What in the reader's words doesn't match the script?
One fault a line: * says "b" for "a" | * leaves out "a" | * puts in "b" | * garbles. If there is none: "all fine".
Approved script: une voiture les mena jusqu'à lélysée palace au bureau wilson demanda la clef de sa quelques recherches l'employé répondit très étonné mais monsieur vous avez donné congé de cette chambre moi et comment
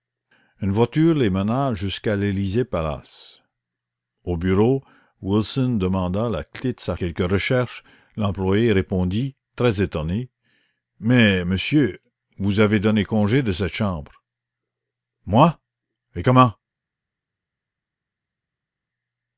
all fine